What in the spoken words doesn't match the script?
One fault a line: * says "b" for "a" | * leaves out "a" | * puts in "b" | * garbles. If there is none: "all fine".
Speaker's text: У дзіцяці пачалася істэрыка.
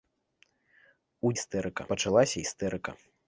* says "істэрыка" for "дзіцяці"